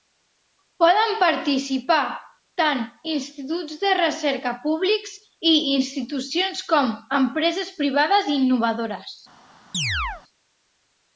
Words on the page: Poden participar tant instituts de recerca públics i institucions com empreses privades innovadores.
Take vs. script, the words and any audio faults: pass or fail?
fail